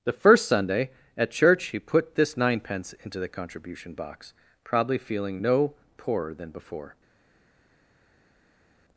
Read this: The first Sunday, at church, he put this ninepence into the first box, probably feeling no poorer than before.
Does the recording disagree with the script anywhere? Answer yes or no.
yes